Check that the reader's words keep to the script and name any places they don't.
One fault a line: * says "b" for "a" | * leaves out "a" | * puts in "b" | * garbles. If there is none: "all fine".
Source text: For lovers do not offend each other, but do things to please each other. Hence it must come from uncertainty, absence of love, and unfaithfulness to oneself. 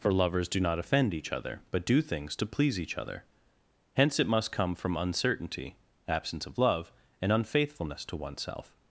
all fine